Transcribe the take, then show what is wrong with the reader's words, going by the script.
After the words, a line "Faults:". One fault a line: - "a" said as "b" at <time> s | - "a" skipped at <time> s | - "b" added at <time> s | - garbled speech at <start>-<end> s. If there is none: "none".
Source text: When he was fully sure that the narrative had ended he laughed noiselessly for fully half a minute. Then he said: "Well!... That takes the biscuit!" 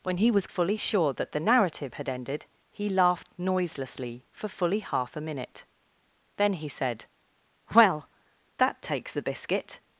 When he was fully sure that the narrative had ended he laughed noiselessly for fully half a minute. Then he said: "Well!... That takes the biscuit!"
Faults:
none